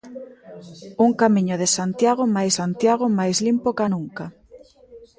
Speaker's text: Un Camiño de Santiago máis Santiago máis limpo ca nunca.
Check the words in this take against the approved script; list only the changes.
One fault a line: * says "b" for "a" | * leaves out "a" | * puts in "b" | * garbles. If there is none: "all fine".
all fine